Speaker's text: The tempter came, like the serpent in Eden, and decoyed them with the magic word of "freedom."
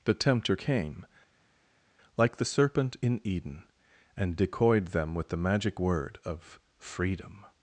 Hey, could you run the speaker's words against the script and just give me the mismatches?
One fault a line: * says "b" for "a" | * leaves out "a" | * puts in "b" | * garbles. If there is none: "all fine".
all fine